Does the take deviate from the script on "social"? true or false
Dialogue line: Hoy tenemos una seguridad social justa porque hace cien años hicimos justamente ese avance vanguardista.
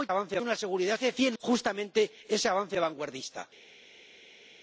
true